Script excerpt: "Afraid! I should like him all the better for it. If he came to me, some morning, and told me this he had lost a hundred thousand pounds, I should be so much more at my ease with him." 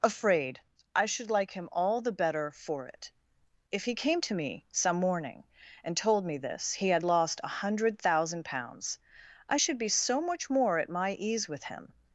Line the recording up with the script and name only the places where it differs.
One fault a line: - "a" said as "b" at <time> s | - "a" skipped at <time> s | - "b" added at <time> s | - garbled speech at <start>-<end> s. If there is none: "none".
none